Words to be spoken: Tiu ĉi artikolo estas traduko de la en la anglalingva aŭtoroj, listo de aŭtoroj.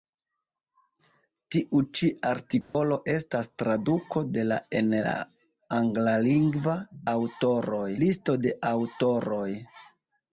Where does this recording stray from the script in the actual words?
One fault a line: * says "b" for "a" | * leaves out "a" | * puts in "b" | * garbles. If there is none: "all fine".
all fine